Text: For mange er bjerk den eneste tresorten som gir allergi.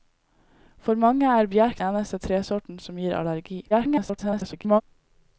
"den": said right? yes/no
no